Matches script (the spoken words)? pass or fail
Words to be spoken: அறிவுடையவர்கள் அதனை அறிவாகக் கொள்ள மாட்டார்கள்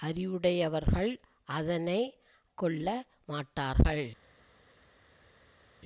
fail